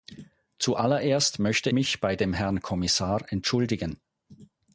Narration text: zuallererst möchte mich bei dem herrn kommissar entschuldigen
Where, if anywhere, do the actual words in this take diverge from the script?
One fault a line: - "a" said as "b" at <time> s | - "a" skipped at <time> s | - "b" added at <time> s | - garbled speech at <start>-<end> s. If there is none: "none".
none